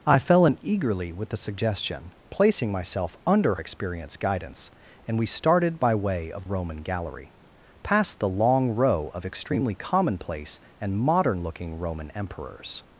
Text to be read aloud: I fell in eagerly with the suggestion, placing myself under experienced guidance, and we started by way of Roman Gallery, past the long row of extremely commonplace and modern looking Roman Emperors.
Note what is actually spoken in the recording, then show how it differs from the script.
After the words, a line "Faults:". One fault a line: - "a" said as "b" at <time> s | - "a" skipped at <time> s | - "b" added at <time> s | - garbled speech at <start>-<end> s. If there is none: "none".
I fell in eagerly with the suggestion, placing myself under experienced guidance, and we started by way of Roman Gallery, past the long row of extremely commonplace and modern looking Roman Emperors.
Faults:
none